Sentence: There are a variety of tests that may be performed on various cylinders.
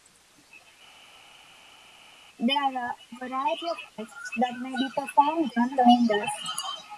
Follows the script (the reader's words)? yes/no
no